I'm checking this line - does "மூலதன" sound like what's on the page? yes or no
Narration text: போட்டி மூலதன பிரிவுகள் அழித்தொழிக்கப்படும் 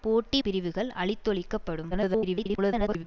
no